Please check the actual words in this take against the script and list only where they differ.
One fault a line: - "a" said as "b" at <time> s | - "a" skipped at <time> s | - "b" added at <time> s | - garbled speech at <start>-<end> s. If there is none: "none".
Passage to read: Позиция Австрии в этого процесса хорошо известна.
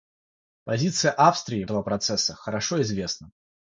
none